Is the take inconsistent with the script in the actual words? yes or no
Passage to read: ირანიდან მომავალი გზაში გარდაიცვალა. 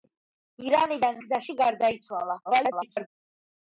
yes